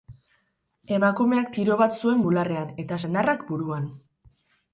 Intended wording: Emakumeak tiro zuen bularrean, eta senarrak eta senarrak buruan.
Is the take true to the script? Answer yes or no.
no